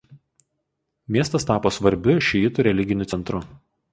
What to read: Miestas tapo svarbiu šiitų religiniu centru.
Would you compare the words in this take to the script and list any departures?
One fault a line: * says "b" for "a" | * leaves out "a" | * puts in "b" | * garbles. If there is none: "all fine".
all fine